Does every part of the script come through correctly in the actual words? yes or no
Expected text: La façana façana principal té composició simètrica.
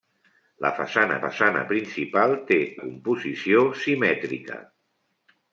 yes